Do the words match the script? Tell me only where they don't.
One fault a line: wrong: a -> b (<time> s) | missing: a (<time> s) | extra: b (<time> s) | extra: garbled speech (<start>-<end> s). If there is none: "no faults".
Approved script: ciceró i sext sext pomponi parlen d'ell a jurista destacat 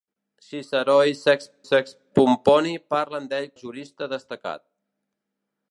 no faults